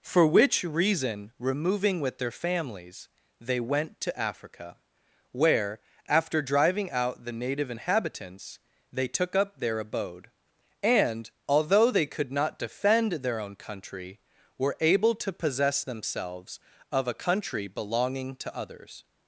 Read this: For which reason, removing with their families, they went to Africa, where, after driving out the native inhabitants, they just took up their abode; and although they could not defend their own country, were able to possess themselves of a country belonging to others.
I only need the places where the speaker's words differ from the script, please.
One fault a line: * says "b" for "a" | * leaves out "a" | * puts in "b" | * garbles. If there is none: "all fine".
* leaves out "just"